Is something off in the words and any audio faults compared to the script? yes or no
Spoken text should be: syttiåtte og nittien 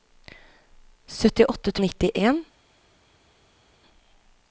no